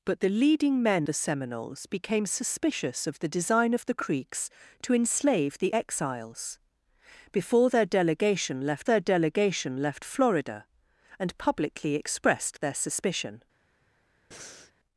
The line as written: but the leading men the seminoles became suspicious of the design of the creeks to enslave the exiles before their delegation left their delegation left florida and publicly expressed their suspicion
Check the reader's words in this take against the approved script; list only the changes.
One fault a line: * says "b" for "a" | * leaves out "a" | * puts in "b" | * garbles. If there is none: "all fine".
all fine